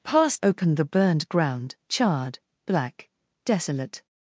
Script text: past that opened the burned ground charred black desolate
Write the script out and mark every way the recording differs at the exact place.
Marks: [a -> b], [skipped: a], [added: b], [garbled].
past [skipped: that] opened the burned ground charred black desolate